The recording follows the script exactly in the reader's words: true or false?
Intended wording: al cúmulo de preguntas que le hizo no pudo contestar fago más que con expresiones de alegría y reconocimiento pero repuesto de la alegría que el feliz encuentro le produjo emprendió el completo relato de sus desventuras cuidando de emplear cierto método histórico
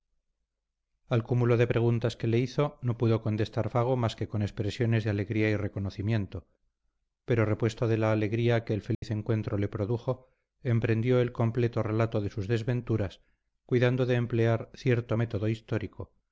true